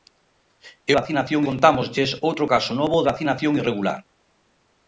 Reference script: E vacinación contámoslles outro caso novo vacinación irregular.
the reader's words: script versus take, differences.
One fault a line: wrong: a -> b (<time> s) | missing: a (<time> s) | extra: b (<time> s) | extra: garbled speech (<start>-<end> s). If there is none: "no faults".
no faults